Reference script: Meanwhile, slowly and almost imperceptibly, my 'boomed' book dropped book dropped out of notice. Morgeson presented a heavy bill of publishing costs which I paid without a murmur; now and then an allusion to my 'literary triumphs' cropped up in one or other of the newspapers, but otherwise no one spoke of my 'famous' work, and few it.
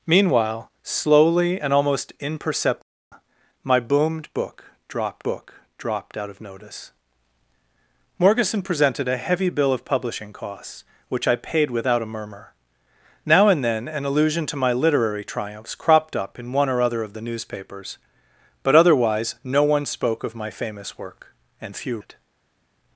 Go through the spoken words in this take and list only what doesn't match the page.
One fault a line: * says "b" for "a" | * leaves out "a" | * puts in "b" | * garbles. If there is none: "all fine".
all fine